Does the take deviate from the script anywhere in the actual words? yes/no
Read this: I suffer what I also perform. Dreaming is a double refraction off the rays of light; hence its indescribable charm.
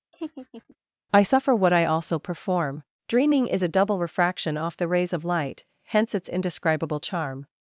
no